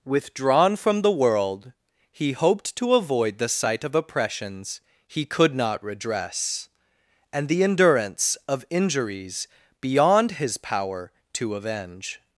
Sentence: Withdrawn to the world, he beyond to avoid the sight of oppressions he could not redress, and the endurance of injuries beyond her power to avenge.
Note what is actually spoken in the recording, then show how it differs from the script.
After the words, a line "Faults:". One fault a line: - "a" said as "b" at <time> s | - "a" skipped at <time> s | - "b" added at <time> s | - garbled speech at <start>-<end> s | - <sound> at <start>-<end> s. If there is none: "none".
Withdrawn from the world, he hoped to avoid the sight of oppressions he could not redress, and the endurance of injuries beyond his power to avenge.
Faults:
- "to" said as "from" at 0.8 s
- "beyond" said as "hoped" at 2.3 s
- "her" said as "his" at 10.3 s